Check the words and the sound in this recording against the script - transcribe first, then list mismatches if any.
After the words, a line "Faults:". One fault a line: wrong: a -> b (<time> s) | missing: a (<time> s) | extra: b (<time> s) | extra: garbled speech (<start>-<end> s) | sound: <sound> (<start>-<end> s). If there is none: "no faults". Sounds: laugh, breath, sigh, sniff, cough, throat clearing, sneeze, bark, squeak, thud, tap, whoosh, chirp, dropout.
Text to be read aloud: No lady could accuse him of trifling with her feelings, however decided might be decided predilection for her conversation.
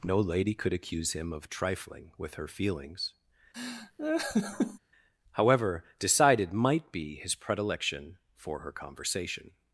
No lady could accuse him of trifling with her feelings, however decided might be his predilection for her conversation.
Faults:
sound: laugh (3.5-4.8 s)
wrong: decided -> his (7.2 s)